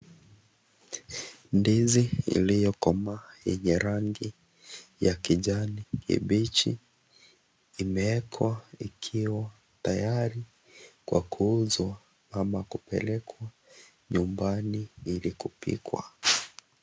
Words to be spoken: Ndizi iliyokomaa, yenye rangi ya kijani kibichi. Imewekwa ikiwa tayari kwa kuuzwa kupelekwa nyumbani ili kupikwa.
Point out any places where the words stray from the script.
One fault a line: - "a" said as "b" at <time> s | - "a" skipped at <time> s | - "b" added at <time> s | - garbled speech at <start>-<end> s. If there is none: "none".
- "ama" added at 12.3 s